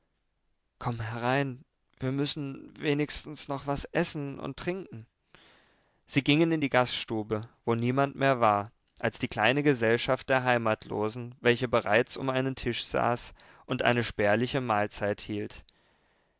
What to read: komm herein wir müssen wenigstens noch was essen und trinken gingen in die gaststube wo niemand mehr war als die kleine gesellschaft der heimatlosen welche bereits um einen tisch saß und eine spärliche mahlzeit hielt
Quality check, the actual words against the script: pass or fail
fail